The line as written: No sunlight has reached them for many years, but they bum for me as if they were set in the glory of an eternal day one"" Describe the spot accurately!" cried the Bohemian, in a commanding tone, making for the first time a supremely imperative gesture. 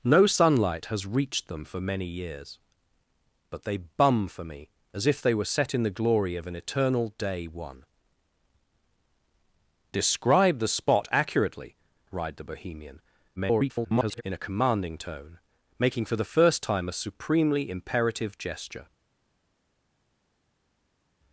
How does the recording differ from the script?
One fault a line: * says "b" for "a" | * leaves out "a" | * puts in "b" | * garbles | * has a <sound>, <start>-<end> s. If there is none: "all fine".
* garbles